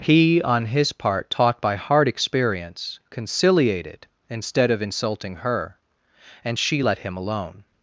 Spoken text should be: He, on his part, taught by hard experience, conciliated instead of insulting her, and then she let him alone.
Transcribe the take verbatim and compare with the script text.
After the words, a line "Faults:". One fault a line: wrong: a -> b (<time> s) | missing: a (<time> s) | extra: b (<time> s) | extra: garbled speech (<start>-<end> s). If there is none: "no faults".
He, on his part, taught by hard experience, conciliated instead of insulting her, and she let him alone.
Faults:
missing: then (6.6 s)